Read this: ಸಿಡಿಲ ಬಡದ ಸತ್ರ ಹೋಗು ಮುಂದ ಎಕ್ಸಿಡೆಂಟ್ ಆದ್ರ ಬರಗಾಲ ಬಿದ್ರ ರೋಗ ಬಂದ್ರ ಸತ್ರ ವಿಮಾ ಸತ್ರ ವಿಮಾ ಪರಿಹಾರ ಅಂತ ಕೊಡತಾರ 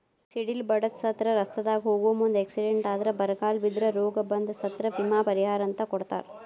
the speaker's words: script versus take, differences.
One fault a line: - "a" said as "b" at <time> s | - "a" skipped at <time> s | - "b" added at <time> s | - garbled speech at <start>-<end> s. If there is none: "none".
- "ರಸ್ತಾದಾಗ" added at 1.4 s
- "ಸತ್ರ ವಿಮಾ" skipped at 5.2 s